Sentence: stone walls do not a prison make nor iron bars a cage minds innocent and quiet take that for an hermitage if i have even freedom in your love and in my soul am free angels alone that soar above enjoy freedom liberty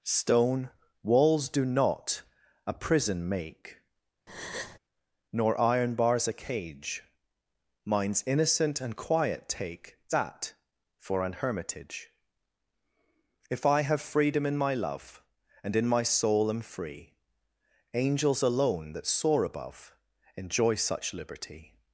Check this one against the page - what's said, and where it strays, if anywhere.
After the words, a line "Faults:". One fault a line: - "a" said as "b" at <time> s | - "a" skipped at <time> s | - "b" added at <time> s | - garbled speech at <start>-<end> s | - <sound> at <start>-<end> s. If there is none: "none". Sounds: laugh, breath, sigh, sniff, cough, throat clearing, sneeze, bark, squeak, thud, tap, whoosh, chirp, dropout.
stone walls do not a prison make nor iron bars a cage minds innocent and quiet take that for an hermitage if i have freedom in my love and in my soul am free angels alone that soar above enjoy such liberty
Faults:
- breath at 4.3-4.8 s
- "even" skipped at 14.0 s
- "your" said as "my" at 14.6 s
- "freedom" said as "such" at 20.8 s